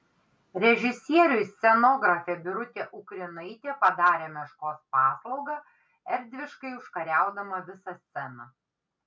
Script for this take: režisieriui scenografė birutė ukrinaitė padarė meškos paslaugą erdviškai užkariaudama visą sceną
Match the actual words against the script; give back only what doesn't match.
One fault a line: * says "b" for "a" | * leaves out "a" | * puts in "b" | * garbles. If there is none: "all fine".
all fine